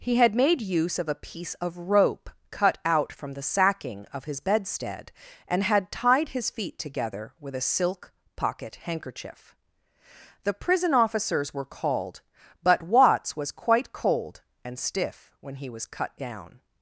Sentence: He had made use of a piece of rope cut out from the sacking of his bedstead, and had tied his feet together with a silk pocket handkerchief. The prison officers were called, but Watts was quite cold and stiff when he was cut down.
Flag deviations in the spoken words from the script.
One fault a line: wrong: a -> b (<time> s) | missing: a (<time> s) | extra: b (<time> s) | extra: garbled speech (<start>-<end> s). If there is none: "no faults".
no faults